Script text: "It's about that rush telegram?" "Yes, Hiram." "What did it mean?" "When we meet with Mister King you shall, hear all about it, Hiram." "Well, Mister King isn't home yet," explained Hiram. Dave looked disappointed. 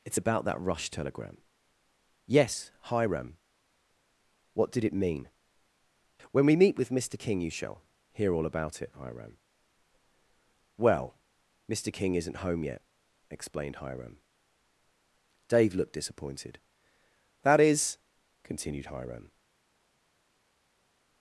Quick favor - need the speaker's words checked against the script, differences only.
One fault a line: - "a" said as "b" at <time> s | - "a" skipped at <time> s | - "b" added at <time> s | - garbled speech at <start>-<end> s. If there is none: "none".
- "That is continued Hiram" added at 17.4 s